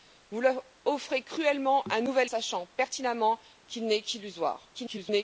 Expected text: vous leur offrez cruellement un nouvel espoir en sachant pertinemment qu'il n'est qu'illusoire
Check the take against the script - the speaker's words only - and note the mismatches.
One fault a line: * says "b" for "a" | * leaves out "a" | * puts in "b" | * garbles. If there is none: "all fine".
* leaves out "espoir en"
* garbles